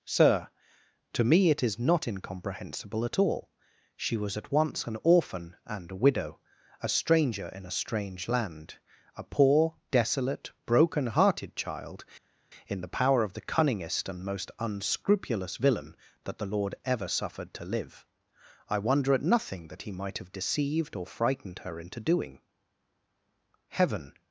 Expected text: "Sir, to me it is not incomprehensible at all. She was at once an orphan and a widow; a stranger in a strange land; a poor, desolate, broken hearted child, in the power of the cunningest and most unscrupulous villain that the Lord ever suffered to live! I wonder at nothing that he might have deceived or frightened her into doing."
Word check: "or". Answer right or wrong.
right